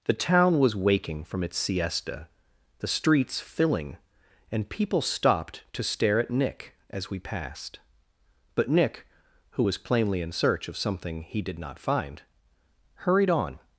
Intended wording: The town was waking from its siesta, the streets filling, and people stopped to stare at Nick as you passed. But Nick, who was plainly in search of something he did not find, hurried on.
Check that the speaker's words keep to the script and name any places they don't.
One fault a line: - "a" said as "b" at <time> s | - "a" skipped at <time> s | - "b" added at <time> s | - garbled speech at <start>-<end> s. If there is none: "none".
- "you" said as "we" at 7.1 s